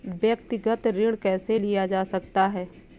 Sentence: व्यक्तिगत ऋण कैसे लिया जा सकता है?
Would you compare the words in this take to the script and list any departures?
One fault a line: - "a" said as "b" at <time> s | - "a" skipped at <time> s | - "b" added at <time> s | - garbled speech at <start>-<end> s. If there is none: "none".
none